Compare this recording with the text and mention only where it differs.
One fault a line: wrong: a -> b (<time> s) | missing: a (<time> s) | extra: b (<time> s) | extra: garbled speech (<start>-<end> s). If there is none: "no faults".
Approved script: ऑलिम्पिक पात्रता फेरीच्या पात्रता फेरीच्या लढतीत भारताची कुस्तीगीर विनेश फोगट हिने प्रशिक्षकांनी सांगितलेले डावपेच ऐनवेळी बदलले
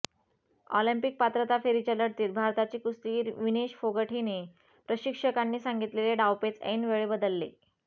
missing: पात्रता फेरीच्या (1.9 s)